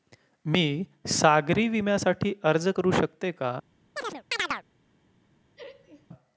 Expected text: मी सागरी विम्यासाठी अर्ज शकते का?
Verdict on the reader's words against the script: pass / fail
fail